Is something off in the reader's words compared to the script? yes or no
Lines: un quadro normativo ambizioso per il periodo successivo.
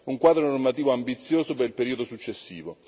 no